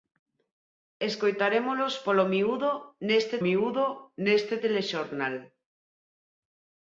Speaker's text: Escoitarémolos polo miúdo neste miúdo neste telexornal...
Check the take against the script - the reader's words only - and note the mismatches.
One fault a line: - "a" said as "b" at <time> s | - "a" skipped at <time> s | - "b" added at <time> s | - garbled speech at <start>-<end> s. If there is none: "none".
none